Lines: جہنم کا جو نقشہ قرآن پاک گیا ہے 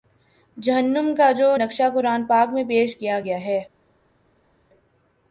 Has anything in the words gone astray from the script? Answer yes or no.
yes